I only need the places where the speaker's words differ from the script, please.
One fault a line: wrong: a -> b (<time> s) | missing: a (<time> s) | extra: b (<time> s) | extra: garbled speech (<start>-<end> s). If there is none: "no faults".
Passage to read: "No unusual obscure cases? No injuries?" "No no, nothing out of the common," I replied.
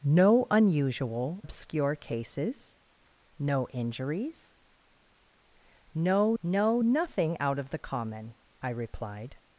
no faults